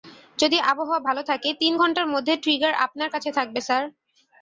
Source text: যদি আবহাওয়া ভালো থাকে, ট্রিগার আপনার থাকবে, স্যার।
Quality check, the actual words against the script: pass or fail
fail